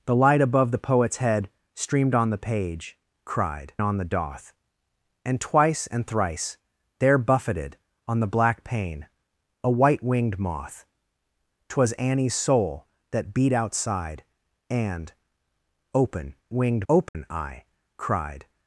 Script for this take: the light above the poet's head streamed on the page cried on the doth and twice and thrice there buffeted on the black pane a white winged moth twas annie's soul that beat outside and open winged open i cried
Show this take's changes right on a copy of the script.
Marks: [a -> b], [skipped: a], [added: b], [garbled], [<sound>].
the light above the poet's head streamed on the page cried on the doth and twice and thrice there buffeted on the black pane a white winged moth twas annie's soul that beat outside and open winged open [dropout] i cried